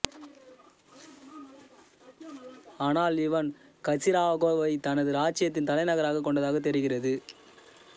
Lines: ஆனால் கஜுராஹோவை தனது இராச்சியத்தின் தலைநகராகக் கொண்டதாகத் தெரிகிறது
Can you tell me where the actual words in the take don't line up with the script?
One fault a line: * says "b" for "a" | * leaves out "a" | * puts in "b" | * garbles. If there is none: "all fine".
* puts in "இவன்"